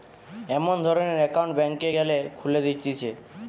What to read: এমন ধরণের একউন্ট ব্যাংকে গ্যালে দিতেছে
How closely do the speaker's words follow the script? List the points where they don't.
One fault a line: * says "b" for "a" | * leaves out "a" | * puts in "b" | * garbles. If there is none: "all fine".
* puts in "খুলে"